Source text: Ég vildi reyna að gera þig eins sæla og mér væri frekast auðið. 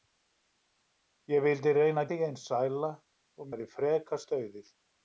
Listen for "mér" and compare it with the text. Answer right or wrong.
wrong